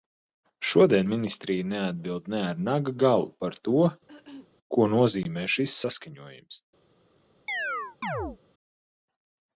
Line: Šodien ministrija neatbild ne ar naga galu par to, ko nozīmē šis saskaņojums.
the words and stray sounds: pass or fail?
fail